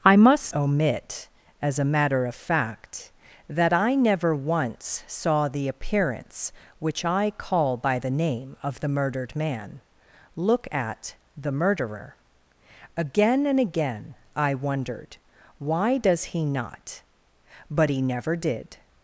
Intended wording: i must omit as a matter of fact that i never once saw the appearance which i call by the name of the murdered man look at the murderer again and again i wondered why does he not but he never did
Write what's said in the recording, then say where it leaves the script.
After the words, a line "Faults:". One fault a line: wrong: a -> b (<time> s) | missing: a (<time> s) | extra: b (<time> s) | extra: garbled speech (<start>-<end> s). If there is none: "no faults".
i must omit as a matter of fact that i never once saw the appearance which i call by the name of the murdered man look at the murderer again and again i wondered why does he not but he never did
Faults:
no faults